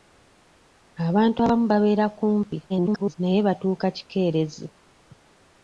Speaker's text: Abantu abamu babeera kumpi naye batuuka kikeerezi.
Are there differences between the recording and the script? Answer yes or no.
yes